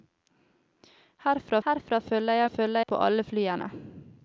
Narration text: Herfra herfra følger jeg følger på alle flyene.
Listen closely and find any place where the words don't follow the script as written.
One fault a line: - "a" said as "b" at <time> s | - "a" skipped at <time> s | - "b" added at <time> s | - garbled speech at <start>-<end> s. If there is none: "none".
none